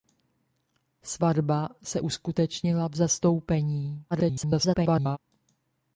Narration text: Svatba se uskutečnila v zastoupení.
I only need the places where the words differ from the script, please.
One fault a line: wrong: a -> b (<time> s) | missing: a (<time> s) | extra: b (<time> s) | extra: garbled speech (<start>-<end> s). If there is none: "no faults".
extra: garbled speech (4.1-5.2 s)